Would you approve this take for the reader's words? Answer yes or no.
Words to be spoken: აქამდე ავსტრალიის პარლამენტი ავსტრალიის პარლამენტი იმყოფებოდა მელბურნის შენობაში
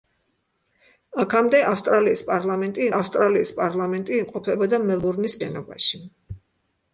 yes